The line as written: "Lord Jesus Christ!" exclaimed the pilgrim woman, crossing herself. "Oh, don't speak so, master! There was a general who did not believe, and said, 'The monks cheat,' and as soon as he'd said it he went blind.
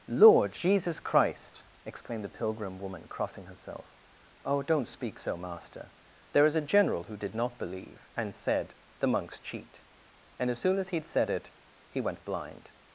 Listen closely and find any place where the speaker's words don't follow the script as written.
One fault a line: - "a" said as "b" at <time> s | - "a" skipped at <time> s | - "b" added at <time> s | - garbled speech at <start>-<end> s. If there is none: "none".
- "was" said as "is" at 6.5 s